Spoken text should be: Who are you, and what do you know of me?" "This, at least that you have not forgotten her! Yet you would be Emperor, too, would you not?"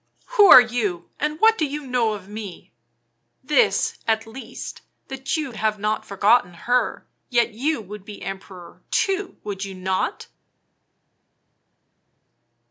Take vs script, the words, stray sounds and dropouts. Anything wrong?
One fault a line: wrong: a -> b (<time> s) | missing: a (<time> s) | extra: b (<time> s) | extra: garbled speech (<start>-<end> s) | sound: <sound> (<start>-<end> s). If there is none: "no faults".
no faults